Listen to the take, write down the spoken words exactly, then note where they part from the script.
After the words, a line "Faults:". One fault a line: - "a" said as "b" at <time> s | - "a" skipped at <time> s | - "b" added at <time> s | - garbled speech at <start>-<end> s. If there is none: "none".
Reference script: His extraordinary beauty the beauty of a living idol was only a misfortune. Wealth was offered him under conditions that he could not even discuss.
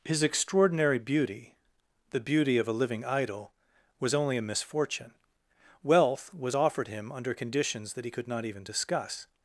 His extraordinary beauty the beauty of a living idol was only a misfortune. Wealth was offered him under conditions that he could not even discuss.
Faults:
none